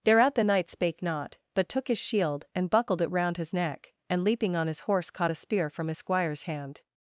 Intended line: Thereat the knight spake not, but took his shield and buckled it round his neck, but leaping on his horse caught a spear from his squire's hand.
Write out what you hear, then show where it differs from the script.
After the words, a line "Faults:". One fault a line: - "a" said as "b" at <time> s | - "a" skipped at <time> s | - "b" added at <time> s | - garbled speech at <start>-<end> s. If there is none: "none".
Thereat the knight spake not, but took his shield and buckled it round his neck, and leaping on his horse caught a spear from his squire's hand.
Faults:
- "but" said as "and" at 4.1 s